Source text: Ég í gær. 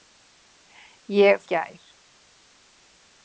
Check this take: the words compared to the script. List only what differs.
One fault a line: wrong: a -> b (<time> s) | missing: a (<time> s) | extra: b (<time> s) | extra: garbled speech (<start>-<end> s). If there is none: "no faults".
no faults